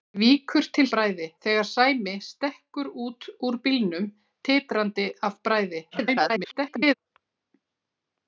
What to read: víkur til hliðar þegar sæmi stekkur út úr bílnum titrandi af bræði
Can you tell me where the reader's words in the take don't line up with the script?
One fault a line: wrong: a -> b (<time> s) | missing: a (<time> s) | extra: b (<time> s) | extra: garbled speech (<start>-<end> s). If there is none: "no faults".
wrong: hliðar -> bræði (1.0 s)
extra: garbled speech (5.9-6.9 s)